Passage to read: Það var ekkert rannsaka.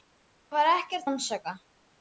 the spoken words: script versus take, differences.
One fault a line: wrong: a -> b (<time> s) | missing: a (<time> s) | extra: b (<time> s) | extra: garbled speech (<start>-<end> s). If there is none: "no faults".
no faults